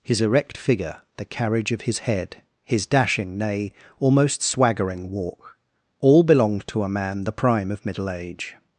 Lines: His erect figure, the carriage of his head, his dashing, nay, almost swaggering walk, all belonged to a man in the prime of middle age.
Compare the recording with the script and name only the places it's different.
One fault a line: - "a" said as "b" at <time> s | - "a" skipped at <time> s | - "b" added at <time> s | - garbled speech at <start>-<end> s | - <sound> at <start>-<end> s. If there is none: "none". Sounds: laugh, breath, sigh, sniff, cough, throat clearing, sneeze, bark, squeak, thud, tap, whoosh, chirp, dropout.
- "in" skipped at 7.2 s